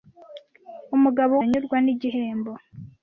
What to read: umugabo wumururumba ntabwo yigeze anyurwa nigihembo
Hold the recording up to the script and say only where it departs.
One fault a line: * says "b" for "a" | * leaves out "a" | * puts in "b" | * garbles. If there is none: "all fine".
* leaves out "wumururumba ntabwo yigeze"